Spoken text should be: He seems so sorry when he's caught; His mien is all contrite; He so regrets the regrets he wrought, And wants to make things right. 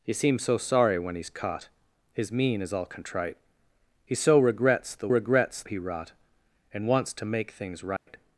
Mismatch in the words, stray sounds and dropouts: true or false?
true